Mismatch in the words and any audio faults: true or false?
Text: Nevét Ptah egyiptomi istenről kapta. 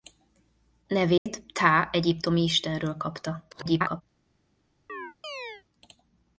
true